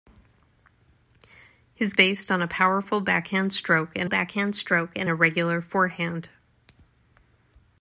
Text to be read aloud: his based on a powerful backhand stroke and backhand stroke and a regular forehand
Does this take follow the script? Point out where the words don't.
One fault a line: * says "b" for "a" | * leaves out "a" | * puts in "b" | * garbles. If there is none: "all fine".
all fine